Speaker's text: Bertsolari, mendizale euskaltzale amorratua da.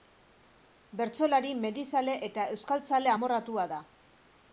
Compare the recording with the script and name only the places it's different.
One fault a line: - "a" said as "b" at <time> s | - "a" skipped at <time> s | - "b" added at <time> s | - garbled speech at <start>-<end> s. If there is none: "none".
- "eta" added at 2.3 s